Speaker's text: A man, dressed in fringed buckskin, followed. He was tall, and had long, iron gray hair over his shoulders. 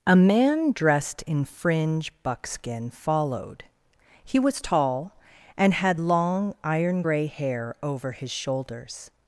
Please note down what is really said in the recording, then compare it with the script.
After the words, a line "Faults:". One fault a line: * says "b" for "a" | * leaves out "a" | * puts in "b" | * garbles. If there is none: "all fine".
A man, dressed in fringe buckskin, followed. He was tall, and had long, iron gray hair over his shoulders.
Faults:
* says "fringe" for "fringed"